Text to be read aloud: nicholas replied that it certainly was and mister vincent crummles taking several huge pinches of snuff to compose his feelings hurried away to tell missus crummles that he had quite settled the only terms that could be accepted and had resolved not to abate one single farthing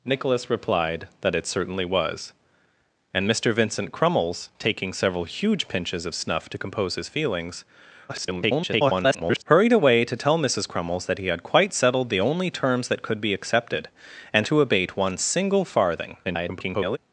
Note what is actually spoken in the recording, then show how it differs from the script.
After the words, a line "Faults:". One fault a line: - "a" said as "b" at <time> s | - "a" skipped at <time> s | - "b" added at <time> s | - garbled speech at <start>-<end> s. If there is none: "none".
nicholas replied that it certainly was and mister vincent crummles taking several huge pinches of snuff to compose his feelings [garbled] hurried away to tell missus crummles that he had quite settled the only terms that could be accepted and to abate one single farthing [garbled]
Faults:
- garbled speech at 8.1-9.4 s
- "had resolved not" skipped at 14.5 s
- garbled speech at 16.2-17.0 s